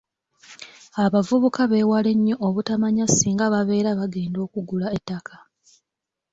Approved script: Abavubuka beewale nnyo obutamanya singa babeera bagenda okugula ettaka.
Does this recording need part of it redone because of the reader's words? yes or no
no